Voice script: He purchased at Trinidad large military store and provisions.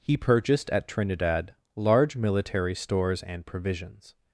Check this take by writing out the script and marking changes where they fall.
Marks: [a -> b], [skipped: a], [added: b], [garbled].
He purchased at Trinidad large military [store -> stores] and provisions.